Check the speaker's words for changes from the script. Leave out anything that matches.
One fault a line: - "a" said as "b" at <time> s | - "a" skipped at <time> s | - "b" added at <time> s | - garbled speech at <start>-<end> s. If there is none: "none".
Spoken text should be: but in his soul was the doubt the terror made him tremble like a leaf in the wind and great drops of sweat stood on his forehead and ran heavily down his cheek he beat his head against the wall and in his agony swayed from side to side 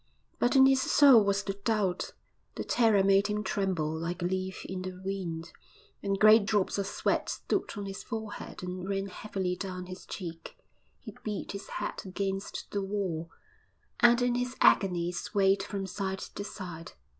none